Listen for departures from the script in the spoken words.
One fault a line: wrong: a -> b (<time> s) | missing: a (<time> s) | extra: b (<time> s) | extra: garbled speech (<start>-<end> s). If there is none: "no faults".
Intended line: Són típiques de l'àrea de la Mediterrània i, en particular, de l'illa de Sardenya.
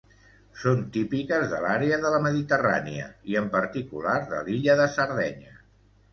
no faults